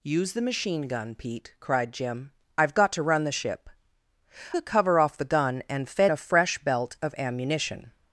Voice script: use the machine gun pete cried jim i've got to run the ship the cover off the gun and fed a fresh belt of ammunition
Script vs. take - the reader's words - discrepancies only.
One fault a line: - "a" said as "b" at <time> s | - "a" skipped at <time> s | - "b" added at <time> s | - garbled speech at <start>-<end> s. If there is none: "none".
none